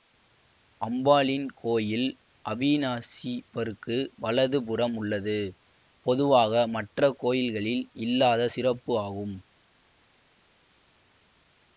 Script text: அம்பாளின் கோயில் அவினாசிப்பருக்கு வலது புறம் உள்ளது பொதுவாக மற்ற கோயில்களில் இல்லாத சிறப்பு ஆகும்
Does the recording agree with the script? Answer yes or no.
yes